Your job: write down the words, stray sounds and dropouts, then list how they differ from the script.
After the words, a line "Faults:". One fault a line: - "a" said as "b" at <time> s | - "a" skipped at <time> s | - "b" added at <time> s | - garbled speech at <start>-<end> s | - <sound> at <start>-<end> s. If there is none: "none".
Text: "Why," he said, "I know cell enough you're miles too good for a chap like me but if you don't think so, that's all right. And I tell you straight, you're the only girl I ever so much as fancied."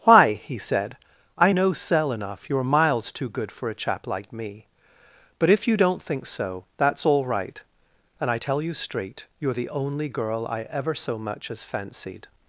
"Why," he said, "I know cell enough you're miles too good for a chap like me but if you don't think so, that's all right. And I tell you straight, you're the only girl I ever so much as fancied."
Faults:
none